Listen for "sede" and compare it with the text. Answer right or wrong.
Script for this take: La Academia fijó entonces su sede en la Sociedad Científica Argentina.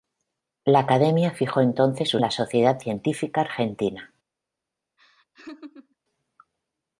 wrong